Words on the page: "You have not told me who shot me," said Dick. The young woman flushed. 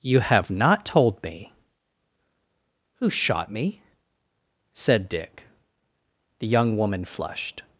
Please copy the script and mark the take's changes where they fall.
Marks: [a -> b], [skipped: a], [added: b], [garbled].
"You have not told me who shot me," said Dick. The young woman flushed.